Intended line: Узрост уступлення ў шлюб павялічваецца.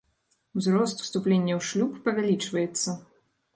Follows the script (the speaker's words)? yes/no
yes